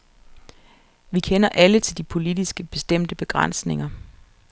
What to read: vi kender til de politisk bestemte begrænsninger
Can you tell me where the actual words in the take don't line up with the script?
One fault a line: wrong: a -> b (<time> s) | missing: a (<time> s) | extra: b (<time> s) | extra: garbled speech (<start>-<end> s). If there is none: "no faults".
extra: alle (1.5 s)